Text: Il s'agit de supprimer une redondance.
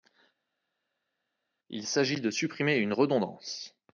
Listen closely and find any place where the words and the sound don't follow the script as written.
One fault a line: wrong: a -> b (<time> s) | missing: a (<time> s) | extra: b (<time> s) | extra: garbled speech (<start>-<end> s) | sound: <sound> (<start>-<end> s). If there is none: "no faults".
no faults